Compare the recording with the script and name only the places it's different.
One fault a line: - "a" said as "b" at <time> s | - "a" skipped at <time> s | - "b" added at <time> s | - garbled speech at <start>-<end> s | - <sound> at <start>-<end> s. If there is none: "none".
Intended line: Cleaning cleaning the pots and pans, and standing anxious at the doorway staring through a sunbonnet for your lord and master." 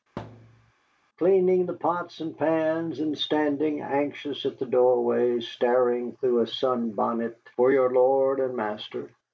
- thud at 0.2-0.7 s
- "cleaning" skipped at 1.7 s